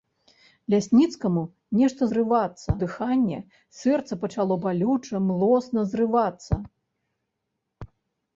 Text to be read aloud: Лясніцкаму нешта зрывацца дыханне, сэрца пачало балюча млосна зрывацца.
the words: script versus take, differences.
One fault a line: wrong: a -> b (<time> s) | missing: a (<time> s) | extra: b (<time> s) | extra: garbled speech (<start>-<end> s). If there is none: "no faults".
no faults